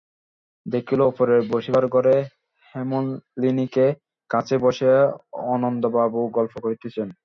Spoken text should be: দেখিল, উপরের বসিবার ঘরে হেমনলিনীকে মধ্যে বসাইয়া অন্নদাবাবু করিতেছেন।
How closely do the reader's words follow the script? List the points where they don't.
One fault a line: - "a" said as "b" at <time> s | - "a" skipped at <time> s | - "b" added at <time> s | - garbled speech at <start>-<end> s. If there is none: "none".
- "মধ্যে" said as "কাছে" at 4.3 s
- "গল্প" added at 6.4 s